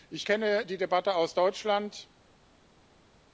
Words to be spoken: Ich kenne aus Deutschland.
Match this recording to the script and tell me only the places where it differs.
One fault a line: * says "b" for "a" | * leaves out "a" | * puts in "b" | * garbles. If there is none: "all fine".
* puts in "die Debatte"